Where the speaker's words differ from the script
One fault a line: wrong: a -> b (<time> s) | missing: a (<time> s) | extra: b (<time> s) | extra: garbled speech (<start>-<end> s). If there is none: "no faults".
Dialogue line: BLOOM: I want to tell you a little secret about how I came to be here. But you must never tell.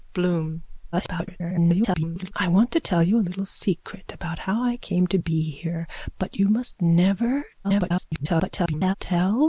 extra: garbled speech (0.9-2.3 s)
extra: garbled speech (7.6-8.9 s)